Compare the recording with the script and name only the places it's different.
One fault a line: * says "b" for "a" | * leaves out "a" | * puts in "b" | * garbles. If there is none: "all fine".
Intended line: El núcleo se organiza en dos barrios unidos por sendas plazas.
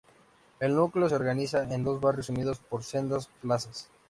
all fine